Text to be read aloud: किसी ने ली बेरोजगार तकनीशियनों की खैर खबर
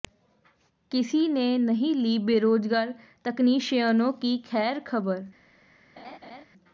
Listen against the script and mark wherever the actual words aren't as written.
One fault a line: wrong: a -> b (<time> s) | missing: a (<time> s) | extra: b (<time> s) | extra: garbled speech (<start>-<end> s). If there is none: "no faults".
extra: नहीं (1.6 s)